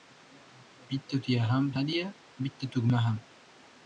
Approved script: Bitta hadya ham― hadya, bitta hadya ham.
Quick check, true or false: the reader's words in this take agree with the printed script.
false